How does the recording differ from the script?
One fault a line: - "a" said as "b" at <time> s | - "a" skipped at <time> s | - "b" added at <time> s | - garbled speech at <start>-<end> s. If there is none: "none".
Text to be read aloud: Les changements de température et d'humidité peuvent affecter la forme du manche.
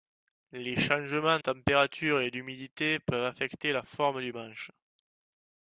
- "de" skipped at 1.4 s